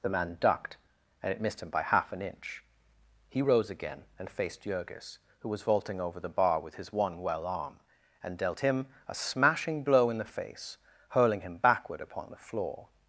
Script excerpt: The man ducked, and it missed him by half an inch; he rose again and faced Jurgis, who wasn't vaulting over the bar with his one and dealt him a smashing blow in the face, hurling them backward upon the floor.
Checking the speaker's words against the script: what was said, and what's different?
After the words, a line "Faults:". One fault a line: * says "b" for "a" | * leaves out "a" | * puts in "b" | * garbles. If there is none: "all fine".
The man ducked, and it missed him by half an inch; he rose again and faced Jurgis, who was vaulting over the bar with his one well arm, and dealt him a smashing blow in the face, hurling him backward upon the floor.
Faults:
* says "was" for "wasn't"
* puts in "well arm"
* says "him" for "them"